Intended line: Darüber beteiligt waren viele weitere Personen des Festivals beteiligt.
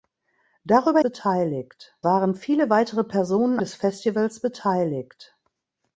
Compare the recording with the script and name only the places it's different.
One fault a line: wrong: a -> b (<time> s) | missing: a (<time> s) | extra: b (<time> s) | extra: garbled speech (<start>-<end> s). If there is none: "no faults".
no faults